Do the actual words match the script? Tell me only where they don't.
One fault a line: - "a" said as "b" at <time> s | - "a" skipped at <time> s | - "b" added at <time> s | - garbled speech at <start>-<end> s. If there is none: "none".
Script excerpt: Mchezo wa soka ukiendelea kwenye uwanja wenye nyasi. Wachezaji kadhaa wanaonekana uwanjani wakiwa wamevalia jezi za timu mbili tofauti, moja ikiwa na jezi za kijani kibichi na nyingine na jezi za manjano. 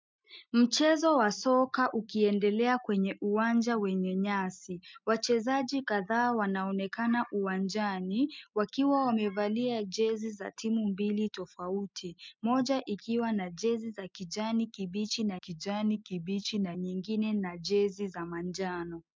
- "kijani kibichi na" added at 15.3 s